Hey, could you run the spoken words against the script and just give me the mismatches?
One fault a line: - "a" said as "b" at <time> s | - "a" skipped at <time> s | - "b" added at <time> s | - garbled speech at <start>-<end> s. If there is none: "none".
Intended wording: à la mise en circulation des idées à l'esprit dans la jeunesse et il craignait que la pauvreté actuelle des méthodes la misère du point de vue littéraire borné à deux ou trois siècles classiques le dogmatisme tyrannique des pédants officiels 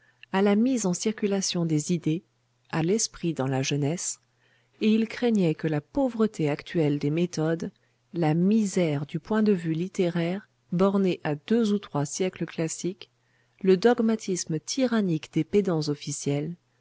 none